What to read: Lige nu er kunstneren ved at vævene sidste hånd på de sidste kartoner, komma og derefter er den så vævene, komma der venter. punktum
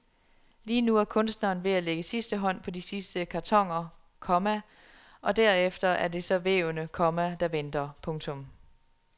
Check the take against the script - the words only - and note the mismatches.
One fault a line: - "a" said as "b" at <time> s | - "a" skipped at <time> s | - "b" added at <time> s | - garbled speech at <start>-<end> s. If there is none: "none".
- "vævene" said as "lægge" at 1.8 s
- "den" said as "det" at 6.1 s